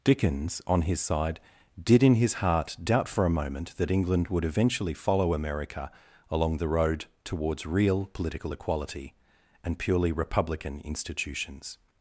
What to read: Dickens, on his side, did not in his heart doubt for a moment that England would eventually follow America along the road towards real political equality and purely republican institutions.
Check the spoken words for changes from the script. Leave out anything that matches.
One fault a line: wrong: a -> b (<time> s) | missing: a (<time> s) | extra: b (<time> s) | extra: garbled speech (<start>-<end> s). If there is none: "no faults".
missing: not (2.0 s)